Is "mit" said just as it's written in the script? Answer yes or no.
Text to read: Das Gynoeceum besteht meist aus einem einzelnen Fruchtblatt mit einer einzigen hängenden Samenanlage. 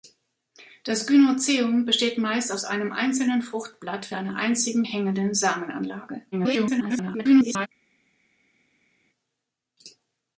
no